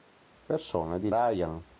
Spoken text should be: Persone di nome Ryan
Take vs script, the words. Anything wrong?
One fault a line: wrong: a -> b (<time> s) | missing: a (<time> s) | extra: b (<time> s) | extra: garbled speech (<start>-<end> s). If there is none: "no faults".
missing: nome (1.1 s)